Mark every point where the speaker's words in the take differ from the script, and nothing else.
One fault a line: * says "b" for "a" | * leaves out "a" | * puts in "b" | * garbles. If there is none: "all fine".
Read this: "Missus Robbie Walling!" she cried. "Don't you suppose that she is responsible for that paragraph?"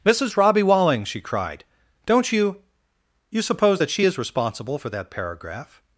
* puts in "you"